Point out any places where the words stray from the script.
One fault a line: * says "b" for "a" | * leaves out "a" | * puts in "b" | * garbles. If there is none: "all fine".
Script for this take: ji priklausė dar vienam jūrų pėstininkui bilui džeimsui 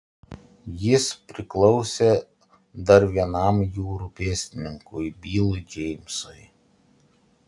* says "jis" for "ji"